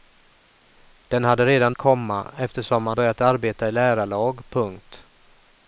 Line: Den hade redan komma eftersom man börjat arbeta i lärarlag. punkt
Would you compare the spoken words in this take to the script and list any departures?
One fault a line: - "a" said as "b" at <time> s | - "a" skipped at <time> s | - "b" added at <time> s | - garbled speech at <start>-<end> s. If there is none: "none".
none